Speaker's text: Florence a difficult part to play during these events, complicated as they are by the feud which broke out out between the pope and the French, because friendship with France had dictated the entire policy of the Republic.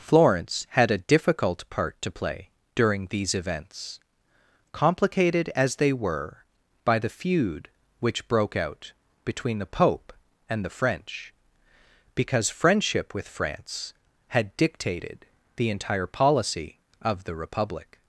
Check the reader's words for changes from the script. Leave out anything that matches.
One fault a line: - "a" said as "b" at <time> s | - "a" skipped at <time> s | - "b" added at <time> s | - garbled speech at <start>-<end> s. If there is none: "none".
- "had" added at 0.7 s
- "are" said as "were" at 5.9 s
- "out" skipped at 8.9 s